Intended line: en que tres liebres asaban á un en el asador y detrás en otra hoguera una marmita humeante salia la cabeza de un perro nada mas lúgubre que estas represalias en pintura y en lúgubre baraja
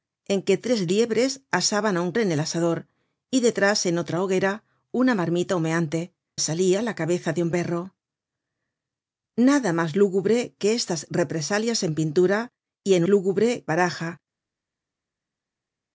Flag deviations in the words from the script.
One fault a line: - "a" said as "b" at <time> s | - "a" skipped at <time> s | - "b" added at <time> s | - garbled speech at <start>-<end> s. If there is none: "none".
none